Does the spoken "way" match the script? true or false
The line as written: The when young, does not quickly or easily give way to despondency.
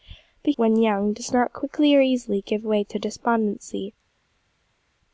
true